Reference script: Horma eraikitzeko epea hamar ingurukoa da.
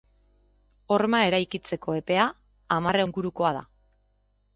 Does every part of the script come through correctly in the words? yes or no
yes